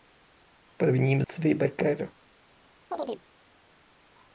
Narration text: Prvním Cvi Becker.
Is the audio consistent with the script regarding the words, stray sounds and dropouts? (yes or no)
no